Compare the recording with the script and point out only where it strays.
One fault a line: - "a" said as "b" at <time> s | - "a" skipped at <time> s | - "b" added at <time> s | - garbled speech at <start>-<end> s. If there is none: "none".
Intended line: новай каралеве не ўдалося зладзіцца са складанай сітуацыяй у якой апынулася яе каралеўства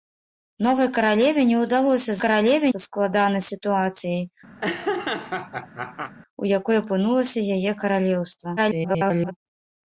- "зладзіцца" said as "каралеве" at 2.2 s
- garbled speech at 8.6-9.3 s